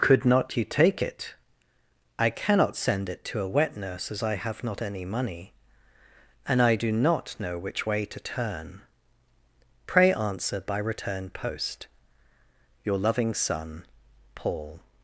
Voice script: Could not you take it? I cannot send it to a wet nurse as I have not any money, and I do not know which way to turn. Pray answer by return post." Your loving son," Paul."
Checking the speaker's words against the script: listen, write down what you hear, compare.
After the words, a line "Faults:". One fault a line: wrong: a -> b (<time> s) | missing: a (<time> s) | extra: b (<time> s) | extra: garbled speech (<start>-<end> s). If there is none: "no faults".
Could not you take it? I cannot send it to a wet nurse as I have not any money, and I do not know which way to turn. Pray answer by return post." Your loving son," Paul."
Faults:
no faults